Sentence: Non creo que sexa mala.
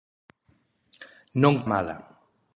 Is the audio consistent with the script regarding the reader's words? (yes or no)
no